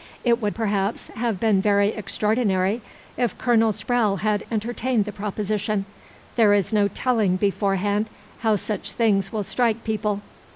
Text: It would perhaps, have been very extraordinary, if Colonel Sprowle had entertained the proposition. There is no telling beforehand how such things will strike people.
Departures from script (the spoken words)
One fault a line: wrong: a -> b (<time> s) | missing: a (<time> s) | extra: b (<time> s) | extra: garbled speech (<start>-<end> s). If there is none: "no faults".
no faults